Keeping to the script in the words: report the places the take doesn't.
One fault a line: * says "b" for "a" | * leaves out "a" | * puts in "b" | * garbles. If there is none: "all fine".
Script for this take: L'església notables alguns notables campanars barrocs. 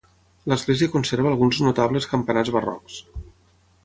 * says "conserva" for "notables"